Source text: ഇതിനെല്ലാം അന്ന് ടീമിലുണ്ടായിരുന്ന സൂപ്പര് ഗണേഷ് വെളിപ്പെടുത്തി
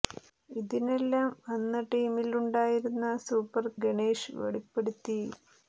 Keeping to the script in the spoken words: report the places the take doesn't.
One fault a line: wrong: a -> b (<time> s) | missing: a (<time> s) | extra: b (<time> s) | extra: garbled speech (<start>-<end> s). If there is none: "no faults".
no faults